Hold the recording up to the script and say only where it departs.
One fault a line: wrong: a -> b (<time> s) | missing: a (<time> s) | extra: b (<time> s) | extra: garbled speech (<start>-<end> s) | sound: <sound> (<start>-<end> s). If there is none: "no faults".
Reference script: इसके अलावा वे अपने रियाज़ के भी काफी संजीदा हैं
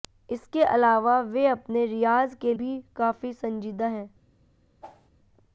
sound: whoosh (4.8-5.1 s)